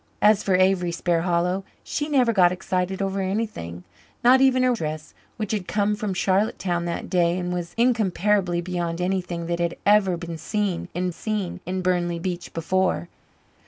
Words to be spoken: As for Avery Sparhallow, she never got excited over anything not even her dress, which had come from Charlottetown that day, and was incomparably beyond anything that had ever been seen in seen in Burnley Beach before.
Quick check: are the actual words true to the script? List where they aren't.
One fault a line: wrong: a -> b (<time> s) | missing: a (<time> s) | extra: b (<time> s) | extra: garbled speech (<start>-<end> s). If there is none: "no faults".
no faults